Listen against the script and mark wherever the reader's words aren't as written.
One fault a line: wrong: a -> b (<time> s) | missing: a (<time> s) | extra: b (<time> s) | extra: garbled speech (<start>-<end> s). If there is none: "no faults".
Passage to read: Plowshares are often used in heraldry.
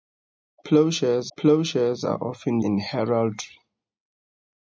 extra: plowshares (1.4 s)
missing: used (2.6 s)